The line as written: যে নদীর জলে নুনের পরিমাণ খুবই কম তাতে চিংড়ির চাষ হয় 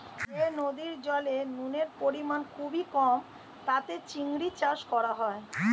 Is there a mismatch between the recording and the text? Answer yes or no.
yes